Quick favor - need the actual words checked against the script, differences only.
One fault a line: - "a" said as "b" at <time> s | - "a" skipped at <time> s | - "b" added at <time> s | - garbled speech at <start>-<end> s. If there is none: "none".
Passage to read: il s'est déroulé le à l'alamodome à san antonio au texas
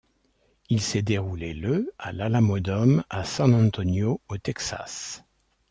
none